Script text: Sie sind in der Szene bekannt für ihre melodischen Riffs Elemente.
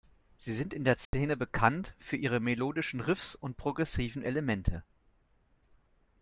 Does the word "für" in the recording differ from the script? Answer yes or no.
no